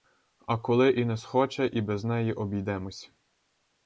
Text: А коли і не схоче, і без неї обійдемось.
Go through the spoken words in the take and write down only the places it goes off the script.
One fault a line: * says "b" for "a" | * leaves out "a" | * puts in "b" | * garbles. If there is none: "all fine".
all fine